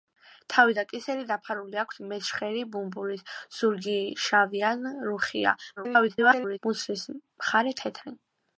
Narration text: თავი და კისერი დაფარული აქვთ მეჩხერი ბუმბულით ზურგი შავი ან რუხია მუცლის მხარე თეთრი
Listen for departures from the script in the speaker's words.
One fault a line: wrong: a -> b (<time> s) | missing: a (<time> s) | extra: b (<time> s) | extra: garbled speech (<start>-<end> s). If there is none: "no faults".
extra: garbled speech (5.8-6.6 s)